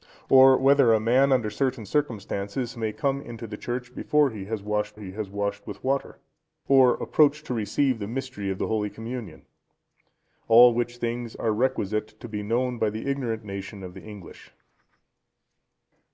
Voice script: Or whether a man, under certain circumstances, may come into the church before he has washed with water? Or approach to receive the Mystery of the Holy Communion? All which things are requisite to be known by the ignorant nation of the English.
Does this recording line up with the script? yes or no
no